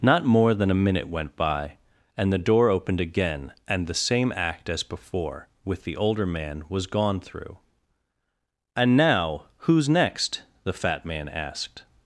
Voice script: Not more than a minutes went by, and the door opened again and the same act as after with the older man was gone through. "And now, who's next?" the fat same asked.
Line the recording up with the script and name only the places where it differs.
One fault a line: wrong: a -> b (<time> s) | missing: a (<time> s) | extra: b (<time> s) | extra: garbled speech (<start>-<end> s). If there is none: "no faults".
wrong: minutes -> minute (0.8 s)
wrong: after -> before (4.8 s)
wrong: same -> man (11.1 s)